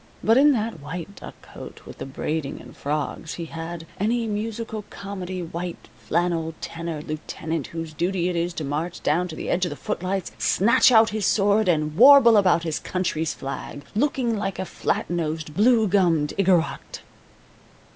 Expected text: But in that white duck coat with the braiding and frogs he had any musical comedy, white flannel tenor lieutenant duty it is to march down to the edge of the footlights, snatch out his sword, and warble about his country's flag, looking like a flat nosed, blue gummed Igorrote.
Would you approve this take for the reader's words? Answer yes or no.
no